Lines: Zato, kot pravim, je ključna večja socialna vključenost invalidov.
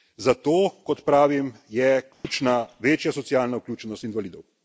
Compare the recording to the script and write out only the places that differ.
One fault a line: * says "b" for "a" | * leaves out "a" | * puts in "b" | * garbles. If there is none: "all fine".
all fine